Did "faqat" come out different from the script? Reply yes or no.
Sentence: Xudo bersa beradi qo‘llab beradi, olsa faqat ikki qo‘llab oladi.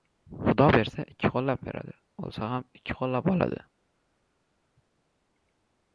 yes